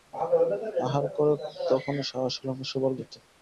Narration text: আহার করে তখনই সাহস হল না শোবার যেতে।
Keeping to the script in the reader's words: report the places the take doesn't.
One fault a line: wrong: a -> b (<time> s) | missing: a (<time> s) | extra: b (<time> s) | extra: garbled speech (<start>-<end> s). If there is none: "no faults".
no faults